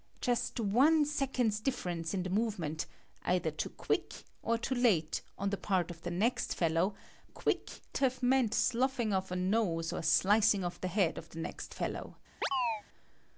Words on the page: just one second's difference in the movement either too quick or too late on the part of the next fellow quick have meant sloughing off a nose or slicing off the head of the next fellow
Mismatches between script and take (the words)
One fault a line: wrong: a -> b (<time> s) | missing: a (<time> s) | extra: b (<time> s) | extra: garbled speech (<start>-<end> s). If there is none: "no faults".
no faults